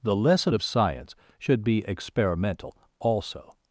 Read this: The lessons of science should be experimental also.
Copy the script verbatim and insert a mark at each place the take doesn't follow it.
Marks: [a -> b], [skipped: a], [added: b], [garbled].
The [lessons -> lesson] of science should be experimental also.